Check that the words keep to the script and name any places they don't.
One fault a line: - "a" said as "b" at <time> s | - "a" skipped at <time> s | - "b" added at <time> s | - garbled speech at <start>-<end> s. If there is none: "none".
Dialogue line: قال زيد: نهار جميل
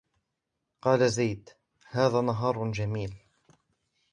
- "هذا" added at 1.9 s